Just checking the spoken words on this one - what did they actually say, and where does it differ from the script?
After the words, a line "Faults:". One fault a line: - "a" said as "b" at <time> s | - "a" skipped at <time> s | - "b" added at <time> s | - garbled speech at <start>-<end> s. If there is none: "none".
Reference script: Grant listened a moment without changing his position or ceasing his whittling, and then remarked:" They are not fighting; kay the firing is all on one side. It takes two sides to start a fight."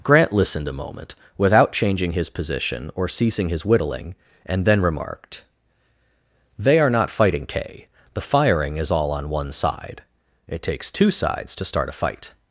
Grant listened a moment without changing his position or ceasing his whittling, and then remarked:" They are not fighting; kay the firing is all on one side. It takes two sides to start a fight."
Faults:
none